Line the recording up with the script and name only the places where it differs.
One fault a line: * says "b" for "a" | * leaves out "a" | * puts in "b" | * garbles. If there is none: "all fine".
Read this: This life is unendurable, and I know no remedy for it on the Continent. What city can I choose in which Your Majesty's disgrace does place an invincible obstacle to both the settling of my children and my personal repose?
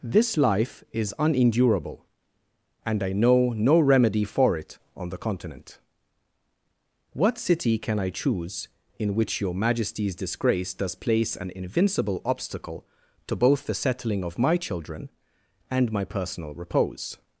all fine